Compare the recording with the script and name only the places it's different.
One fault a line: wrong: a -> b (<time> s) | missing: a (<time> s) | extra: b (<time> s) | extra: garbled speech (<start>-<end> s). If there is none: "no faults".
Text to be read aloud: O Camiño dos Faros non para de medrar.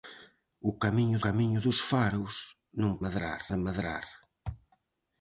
extra: Camiño (1.2 s)
wrong: para -> medrar (3.0 s)